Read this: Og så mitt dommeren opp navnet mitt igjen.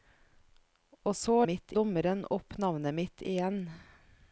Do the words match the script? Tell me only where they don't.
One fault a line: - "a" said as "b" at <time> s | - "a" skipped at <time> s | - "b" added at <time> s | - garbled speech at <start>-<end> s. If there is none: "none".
none